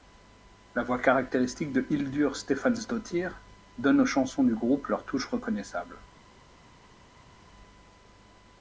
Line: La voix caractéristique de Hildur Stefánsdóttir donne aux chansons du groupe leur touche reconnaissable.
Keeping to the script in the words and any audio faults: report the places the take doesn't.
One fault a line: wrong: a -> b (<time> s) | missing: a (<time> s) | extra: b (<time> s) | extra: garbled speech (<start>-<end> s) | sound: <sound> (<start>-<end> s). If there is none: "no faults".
no faults